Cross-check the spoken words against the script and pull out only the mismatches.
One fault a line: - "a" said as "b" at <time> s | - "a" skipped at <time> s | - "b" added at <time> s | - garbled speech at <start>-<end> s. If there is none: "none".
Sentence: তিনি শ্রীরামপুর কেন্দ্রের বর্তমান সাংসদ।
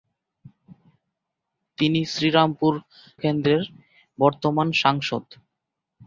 none